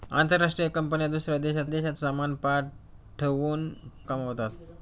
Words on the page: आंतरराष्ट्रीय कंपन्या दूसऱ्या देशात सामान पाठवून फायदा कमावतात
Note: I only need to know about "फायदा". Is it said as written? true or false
false